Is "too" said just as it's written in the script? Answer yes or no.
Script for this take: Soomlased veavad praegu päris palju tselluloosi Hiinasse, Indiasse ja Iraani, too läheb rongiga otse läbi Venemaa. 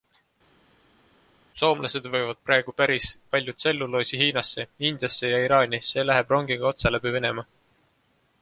no